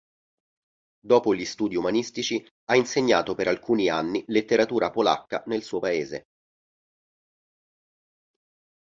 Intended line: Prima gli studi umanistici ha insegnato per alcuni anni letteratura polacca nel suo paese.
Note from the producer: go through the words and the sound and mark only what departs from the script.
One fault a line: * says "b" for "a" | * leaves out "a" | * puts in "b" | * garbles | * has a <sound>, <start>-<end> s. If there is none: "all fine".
* says "Dopo" for "Prima"